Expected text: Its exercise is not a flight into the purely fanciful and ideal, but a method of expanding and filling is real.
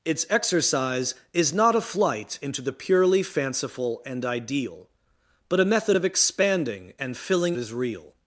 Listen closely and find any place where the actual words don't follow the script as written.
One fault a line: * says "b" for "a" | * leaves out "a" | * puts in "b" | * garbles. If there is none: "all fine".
all fine